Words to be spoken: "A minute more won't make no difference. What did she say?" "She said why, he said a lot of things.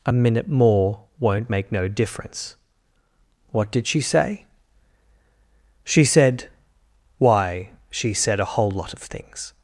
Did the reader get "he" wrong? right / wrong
wrong